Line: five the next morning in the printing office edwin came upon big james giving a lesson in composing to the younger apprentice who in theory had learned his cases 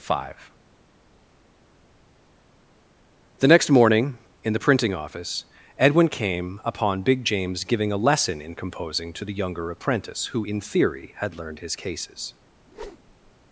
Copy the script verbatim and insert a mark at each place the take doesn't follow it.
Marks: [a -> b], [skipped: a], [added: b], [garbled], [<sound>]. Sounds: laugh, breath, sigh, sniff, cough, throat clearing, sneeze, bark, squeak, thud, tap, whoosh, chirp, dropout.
five the next morning in the printing office edwin came upon big james giving a lesson in composing to the younger apprentice who in theory had learned his cases [whoosh]